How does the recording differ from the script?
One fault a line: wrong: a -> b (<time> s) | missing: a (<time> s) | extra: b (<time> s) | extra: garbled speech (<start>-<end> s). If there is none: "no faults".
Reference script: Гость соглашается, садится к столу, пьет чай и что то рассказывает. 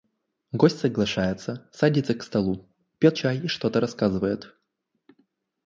no faults